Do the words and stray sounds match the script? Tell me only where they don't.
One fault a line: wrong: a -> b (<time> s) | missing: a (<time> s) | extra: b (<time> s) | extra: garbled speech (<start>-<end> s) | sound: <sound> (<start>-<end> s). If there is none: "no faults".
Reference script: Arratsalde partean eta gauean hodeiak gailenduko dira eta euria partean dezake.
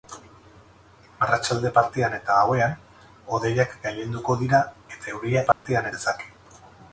sound: dropout (5.5-5.7 s)